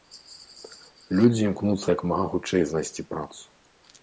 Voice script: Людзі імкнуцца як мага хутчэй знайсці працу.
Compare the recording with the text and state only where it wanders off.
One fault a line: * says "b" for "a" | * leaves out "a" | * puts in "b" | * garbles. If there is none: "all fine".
all fine